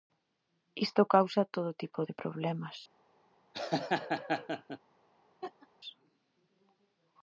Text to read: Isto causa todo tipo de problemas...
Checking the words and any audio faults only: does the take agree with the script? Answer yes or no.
no